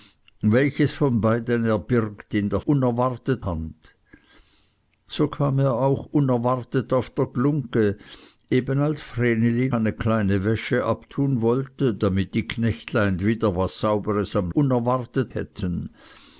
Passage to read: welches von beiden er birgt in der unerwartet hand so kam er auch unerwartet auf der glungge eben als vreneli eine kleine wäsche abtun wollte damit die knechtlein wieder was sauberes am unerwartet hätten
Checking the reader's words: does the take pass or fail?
pass